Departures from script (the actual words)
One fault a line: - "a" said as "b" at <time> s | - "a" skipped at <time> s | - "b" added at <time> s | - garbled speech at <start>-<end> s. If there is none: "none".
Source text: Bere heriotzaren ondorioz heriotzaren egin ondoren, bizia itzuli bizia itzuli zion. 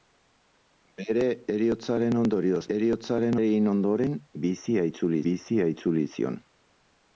none